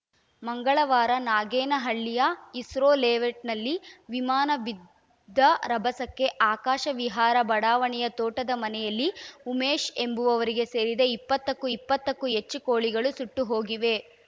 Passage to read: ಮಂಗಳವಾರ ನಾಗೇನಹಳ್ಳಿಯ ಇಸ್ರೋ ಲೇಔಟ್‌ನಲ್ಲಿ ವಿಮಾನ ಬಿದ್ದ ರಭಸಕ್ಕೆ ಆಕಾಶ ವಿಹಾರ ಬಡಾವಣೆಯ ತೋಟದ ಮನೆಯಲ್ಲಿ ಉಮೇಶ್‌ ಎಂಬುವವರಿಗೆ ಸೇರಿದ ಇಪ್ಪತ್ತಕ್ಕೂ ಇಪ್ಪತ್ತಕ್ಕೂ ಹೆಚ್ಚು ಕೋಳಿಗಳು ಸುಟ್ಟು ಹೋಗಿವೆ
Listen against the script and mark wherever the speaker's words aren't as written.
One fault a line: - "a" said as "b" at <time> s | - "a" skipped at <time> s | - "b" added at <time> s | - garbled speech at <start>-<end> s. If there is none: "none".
none